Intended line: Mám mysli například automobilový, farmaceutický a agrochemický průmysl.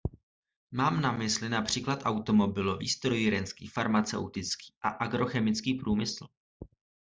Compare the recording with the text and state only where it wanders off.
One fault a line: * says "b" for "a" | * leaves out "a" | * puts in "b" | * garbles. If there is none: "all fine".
* puts in "na"
* puts in "strojírenský"